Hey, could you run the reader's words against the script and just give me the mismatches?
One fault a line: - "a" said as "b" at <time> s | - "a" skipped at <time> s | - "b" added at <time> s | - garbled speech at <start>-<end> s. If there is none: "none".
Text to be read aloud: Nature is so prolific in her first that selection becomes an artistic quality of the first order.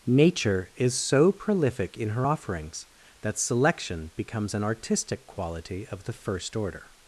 - "first" said as "offerings" at 2.2 s